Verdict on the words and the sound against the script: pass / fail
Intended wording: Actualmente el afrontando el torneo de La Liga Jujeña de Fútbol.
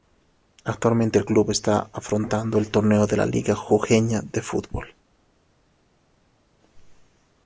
fail